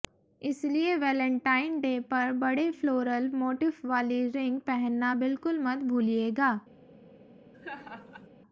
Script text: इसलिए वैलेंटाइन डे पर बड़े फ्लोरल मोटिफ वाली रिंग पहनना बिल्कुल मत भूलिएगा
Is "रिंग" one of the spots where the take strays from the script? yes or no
no